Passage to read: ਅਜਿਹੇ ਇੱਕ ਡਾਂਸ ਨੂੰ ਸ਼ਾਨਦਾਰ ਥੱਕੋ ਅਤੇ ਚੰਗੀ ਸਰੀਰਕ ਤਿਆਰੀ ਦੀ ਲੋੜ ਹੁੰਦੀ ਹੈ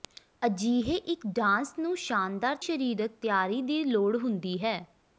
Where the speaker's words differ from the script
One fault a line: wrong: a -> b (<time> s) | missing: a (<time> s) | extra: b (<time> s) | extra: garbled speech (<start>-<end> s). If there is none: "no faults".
missing: ਥੱਕੋ ਅਤੇ ਚੰਗੀ (2.5 s)